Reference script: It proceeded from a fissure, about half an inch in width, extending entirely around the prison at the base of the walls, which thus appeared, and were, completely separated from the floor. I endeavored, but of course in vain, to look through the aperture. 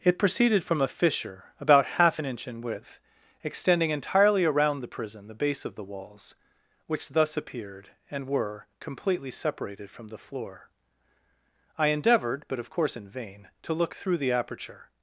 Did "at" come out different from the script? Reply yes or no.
yes